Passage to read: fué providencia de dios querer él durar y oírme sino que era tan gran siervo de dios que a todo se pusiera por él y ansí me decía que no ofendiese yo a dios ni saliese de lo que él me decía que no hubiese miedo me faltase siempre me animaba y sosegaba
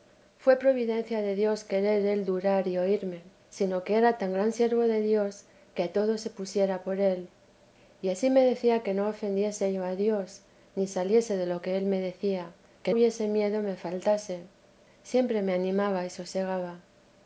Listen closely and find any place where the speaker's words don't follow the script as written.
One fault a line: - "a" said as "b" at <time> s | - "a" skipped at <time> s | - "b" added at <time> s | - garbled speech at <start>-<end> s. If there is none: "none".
- "no" skipped at 12.9 s